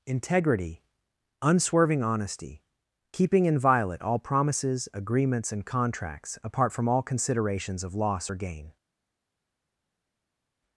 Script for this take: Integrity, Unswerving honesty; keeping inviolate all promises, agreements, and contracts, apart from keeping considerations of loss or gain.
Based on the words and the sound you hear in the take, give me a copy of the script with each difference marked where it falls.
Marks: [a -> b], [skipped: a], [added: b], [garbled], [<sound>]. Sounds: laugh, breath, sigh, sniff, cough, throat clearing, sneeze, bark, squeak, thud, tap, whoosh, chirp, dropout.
Integrity, Unswerving honesty; keeping inviolate all promises, agreements, and contracts, apart from [keeping -> all] considerations of loss or gain.